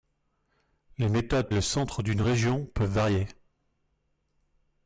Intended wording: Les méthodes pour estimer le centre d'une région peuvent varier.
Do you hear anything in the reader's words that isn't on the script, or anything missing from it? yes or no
yes